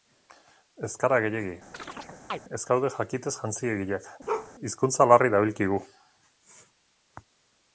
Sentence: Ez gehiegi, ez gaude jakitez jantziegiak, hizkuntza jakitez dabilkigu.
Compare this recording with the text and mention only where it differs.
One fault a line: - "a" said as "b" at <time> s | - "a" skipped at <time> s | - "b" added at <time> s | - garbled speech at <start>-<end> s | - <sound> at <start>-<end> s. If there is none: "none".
- "gara" added at 1.0 s
- chirp at 1.7-2.4 s
- bark at 4.3-4.5 s
- "jakitez" said as "larri" at 5.1 s